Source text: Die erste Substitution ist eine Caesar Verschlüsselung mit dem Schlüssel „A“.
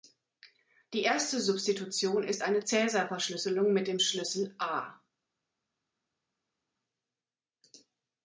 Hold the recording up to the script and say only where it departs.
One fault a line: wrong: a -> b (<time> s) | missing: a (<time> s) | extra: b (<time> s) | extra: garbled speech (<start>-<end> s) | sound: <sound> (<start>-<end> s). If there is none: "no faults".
no faults